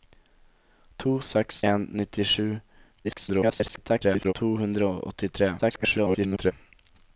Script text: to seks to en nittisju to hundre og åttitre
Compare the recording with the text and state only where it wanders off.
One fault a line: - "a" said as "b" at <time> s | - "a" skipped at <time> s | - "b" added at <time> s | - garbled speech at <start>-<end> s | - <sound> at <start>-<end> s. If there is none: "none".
- "to" skipped at 1.6 s
- garbled speech at 3.0-4.3 s
- garbled speech at 5.6-6.5 s